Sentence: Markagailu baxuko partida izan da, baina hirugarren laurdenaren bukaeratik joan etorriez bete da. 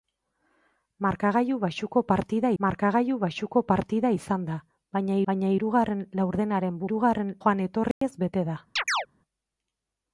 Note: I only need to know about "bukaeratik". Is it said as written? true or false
false